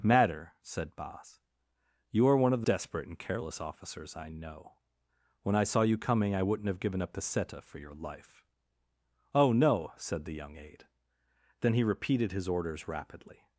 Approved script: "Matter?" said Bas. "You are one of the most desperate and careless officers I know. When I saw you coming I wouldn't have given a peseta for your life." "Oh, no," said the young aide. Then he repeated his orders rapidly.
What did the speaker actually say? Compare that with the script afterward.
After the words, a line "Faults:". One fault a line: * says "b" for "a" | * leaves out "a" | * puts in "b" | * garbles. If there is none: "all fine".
"Matter?" said Bas. "You are one of the desperate and careless officers I know. When I saw you coming I wouldn't have given a peseta for your life." "Oh, no," said the young aide. Then he repeated his orders rapidly.
Faults:
* leaves out "most"